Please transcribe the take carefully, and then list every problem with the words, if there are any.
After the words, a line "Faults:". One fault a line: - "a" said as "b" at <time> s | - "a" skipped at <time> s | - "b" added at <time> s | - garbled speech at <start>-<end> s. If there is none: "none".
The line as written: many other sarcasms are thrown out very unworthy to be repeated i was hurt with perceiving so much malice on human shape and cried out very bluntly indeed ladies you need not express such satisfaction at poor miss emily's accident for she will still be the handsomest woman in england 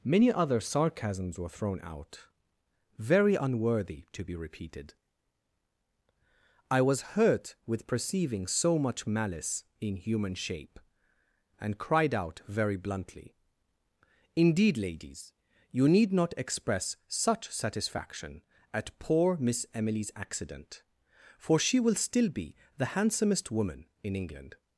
many other sarcasms were thrown out very unworthy to be repeated i was hurt with perceiving so much malice in human shape and cried out very bluntly indeed ladies you need not express such satisfaction at poor miss emily's accident for she will still be the handsomest woman in england
Faults:
- "are" said as "were" at 1.4 s
- "on" said as "in" at 9.8 s